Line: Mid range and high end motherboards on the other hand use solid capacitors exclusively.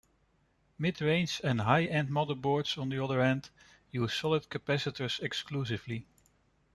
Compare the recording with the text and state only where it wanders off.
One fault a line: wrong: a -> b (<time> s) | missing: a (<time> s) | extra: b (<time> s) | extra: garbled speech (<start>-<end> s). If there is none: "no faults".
no faults